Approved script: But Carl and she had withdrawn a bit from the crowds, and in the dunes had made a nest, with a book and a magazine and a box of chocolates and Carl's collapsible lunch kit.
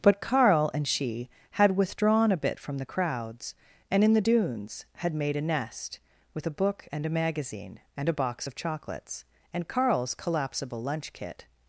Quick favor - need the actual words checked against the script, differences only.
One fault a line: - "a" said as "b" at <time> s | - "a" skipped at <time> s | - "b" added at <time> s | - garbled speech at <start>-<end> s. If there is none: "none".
none